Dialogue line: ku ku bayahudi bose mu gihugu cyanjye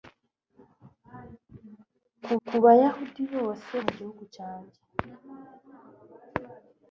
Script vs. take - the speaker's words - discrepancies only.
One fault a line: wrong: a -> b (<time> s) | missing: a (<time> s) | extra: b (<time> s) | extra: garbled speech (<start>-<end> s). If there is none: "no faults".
no faults